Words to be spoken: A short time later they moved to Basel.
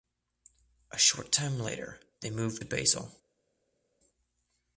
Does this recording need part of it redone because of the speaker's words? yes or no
no